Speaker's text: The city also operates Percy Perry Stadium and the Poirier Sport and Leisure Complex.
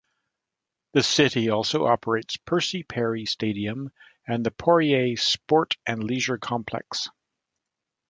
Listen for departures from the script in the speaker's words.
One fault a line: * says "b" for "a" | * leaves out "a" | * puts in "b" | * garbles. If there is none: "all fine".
all fine